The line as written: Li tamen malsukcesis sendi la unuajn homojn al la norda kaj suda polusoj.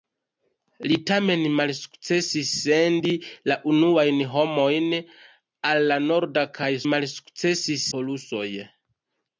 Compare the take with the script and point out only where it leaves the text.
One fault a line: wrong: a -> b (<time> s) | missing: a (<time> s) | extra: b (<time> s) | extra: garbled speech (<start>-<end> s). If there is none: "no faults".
wrong: suda -> malsukcesis (6.9 s)